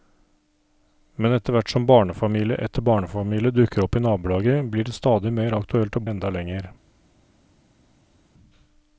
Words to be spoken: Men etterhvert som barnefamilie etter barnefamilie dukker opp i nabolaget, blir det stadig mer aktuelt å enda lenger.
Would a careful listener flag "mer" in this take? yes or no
no